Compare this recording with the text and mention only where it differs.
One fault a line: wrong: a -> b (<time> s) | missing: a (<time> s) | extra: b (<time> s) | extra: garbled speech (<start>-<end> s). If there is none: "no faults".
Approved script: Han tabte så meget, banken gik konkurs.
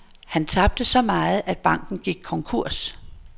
extra: at (1.4 s)